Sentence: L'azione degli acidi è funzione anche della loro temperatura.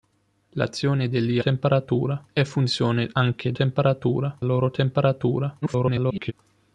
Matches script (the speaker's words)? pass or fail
fail